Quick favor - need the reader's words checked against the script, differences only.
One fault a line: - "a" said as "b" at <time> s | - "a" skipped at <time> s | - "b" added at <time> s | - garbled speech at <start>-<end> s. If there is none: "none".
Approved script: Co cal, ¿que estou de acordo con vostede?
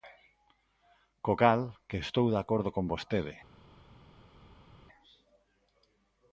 none